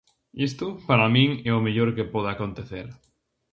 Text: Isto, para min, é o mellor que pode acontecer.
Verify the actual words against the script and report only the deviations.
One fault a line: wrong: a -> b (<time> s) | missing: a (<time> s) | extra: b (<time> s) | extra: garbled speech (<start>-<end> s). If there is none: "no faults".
no faults